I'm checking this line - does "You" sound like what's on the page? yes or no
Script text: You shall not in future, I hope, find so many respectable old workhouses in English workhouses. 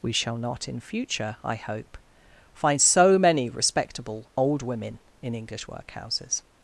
no